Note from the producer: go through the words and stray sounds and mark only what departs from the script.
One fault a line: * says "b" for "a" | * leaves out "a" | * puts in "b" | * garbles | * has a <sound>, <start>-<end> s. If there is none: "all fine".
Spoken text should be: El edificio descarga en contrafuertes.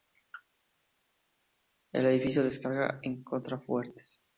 all fine